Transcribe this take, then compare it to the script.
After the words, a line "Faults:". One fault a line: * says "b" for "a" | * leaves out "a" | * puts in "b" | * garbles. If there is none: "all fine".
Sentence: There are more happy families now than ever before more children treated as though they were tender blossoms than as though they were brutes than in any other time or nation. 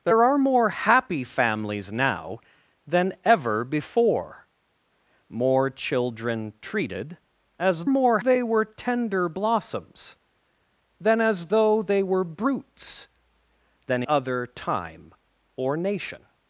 There are more happy families now than ever before more children treated as more they were tender blossoms than as though they were brutes than other time or nation.
Faults:
* says "more" for "though"
* leaves out "in any"